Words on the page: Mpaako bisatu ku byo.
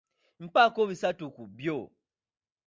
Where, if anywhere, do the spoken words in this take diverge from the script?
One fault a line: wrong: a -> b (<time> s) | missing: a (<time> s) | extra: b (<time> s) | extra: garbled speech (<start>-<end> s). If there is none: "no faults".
no faults